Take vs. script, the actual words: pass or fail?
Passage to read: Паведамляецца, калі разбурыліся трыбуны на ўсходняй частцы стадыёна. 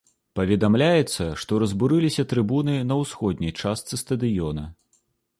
fail